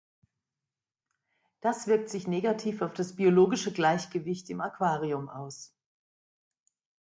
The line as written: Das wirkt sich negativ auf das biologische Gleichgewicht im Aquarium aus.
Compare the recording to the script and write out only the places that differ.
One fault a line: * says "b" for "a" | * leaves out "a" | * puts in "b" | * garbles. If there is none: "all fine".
all fine